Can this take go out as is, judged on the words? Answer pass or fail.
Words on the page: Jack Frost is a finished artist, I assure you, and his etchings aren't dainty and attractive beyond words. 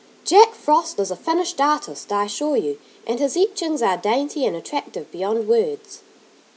fail